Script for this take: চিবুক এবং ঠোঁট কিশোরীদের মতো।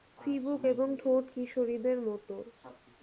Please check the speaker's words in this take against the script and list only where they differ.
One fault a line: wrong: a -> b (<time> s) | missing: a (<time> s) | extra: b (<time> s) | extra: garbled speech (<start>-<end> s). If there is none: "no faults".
no faults